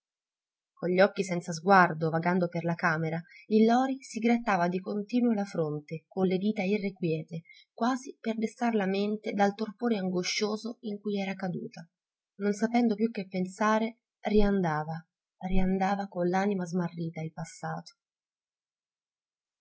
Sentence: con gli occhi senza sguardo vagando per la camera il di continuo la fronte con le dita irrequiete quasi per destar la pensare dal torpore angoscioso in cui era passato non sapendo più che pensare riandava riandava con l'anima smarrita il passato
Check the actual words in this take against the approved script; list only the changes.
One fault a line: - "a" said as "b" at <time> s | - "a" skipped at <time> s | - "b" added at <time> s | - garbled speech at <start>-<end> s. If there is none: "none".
- "lori si grattava" added at 3.6 s
- "pensare" said as "mente" at 8.9 s
- "passato" said as "caduta" at 11.3 s